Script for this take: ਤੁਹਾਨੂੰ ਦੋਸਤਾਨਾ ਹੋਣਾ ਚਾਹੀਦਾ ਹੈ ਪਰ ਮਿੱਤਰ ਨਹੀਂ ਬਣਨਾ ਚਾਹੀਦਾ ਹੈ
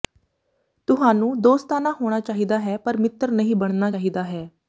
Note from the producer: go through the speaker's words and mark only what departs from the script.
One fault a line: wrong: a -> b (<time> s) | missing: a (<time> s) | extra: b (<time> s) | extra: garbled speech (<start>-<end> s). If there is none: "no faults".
no faults